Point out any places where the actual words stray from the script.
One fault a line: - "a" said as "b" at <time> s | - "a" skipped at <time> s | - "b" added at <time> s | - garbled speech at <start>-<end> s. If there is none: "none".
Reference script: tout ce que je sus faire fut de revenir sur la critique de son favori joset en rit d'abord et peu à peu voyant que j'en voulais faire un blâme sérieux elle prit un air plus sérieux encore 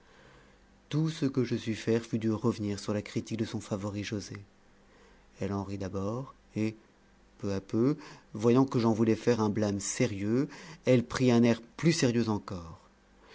- "elle" added at 5.4 s